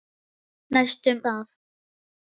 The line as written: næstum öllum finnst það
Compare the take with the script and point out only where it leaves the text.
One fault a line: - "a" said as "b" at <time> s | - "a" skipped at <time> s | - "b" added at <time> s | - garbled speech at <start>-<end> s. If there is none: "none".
- "öllum finnst" skipped at 1.2 s